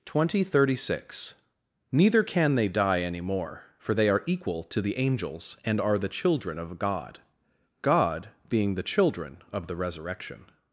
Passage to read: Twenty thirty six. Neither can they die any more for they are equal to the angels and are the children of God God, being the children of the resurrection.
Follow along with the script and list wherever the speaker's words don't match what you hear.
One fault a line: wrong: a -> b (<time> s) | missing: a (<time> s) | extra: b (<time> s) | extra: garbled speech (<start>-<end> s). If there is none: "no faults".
no faults